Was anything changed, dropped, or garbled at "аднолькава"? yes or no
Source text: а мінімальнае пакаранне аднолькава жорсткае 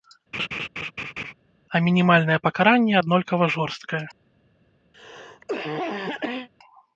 no